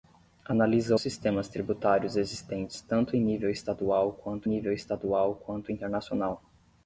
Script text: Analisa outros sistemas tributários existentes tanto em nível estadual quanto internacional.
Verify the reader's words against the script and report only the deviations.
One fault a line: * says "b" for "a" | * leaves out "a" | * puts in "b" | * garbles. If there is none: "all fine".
* leaves out "outros"
* puts in "nível estadual quanto"